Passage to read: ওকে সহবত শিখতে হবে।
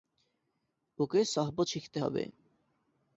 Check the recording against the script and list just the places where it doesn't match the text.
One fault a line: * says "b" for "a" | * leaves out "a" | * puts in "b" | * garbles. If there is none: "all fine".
all fine